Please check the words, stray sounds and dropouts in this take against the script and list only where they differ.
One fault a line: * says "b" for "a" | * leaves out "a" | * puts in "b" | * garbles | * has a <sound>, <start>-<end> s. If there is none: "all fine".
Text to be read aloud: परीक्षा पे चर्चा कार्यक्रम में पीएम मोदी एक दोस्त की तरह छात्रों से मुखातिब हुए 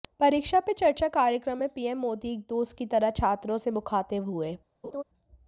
* has a laugh, 4.8-5.0 s